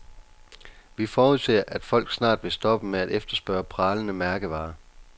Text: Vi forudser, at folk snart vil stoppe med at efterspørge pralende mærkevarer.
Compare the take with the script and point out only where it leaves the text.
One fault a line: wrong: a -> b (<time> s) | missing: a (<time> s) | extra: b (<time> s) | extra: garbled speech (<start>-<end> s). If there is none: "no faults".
no faults